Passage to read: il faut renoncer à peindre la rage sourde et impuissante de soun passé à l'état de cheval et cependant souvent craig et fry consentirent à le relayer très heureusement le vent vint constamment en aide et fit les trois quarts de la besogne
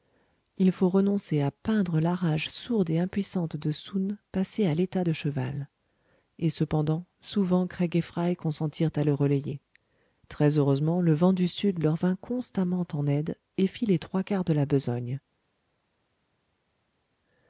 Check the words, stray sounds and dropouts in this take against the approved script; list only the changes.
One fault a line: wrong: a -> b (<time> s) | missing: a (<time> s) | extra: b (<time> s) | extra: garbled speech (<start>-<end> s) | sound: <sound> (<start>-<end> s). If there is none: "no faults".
extra: du sud leur (11.3 s)